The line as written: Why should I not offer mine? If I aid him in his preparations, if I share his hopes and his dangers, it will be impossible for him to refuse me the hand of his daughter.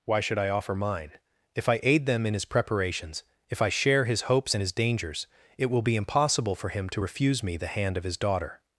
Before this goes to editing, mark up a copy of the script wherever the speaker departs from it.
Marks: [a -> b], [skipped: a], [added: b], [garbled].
Why should I [skipped: not] offer mine? If I aid [him -> them] in his preparations, if I share his hopes and his dangers, it will be impossible for him to refuse me the hand of his daughter.